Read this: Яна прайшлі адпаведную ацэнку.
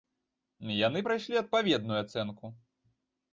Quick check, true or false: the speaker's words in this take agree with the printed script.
false